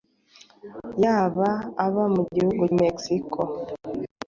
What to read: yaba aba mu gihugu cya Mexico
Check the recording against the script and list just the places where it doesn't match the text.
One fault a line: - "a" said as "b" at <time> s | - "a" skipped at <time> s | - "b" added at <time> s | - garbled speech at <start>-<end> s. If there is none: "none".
- "cya" skipped at 2.6 s